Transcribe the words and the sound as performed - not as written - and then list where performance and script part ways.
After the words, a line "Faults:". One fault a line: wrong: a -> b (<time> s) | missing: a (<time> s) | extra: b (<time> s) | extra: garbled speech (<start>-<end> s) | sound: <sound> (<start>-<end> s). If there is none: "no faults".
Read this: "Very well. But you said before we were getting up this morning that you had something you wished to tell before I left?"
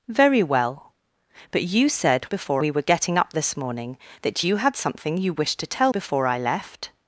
"Very well. But you said before we were getting up this morning that you had something you wished to tell before I left?"
Faults:
no faults